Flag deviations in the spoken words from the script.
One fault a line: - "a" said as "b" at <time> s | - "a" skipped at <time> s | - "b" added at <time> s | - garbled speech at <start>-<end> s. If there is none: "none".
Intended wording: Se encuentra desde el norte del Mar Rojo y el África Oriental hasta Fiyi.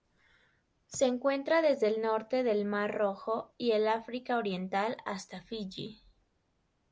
none